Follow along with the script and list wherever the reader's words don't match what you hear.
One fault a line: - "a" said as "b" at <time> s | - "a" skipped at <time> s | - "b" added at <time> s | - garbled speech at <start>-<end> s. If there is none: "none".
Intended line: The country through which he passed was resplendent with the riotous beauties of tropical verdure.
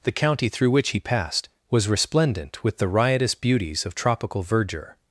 - "country" said as "county" at 0.1 s